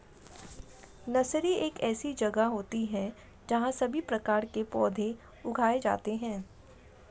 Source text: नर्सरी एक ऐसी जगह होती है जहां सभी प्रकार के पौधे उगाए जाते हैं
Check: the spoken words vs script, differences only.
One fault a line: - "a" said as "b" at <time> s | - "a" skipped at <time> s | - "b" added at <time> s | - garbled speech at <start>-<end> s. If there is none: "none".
none